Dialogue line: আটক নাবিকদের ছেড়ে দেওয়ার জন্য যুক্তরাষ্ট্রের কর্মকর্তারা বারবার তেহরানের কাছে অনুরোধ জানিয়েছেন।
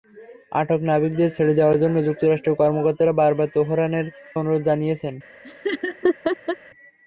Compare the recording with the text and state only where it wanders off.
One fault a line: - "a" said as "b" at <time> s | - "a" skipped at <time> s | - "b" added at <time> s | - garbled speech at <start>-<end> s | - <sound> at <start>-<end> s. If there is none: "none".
- "কাছে" skipped at 4.1 s
- laugh at 5.4-6.6 s